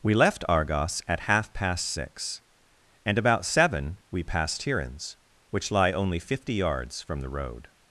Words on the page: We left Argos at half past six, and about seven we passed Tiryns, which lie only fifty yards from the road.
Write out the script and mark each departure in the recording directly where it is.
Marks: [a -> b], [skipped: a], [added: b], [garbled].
We left Argos at half past six, and about seven we passed Tiryns, which lie only fifty yards from the road.